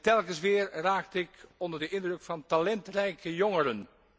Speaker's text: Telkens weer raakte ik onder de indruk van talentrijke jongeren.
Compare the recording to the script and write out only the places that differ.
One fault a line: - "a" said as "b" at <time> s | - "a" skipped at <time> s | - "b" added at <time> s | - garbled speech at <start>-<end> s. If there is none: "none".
none